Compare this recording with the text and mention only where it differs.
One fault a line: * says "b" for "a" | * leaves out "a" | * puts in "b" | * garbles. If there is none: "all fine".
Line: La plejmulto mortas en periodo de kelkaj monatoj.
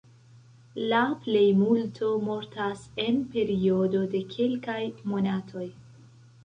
all fine